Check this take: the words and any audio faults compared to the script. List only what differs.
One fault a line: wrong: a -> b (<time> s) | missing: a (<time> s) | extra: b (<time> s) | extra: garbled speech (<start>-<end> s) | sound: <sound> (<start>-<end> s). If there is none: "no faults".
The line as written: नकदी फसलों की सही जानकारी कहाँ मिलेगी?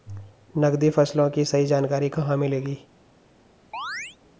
sound: chirp (3.7-4.2 s)